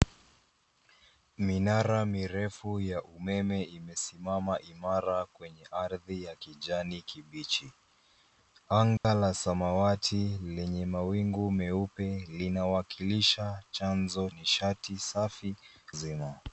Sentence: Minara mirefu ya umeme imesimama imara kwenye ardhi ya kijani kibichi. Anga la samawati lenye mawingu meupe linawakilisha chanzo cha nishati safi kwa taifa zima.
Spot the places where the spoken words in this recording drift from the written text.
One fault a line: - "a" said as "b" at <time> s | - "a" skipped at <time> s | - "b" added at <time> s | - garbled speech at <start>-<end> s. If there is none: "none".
- "cha" skipped at 14.3 s
- "kwa taifa" skipped at 15.5 s